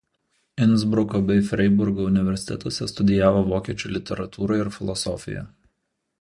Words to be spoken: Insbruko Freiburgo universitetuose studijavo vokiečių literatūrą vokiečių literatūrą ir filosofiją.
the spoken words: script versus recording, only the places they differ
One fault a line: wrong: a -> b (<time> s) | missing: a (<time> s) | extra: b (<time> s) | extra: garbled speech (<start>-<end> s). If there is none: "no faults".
extra: bei (1.3 s)
missing: vokiečių literatūrą (4.6 s)